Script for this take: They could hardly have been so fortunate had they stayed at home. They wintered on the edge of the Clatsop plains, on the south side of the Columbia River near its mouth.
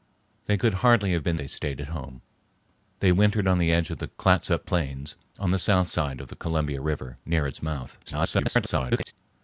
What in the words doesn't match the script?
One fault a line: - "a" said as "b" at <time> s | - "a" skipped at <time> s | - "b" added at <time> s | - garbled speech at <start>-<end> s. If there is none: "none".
- "so fortunate had" skipped at 1.4 s
- garbled speech at 8.1-9.1 s